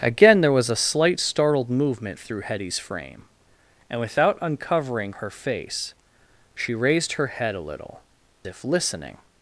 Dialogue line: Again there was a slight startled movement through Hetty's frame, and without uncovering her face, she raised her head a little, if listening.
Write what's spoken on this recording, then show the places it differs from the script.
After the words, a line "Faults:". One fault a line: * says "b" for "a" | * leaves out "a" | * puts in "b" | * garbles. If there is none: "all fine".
Again there was a slight startled movement through Hetty's frame, and without uncovering her face, she raised her head a little, if listening.
Faults:
all fine